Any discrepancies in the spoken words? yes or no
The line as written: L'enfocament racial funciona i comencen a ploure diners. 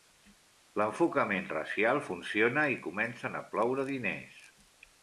no